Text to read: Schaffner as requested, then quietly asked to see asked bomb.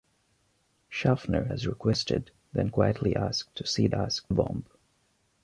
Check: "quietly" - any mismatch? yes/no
no